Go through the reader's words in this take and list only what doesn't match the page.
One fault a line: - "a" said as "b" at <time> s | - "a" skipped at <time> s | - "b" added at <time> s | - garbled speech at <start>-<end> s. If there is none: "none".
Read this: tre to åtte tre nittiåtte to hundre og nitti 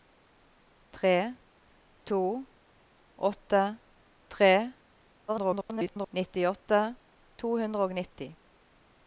- garbled speech at 5.3-6.1 s